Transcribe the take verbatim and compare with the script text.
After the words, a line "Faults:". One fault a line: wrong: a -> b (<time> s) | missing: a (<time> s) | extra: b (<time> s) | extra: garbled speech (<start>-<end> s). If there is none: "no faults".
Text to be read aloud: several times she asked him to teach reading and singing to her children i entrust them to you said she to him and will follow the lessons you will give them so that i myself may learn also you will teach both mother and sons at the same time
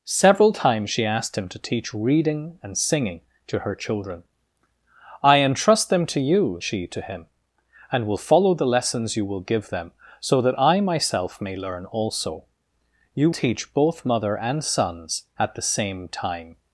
several times she asked him to teach reading and singing to her children i entrust them to you she to him and will follow the lessons you will give them so that i myself may learn also you teach both mother and sons at the same time
Faults:
missing: said (6.6 s)
missing: will (13.3 s)